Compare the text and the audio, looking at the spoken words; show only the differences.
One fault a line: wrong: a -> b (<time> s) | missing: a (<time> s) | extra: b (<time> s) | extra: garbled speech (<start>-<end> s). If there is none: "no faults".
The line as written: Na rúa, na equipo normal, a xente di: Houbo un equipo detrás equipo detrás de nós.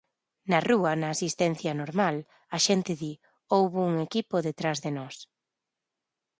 wrong: equipo -> asistencia (1.1 s)
missing: equipo detrás (4.8 s)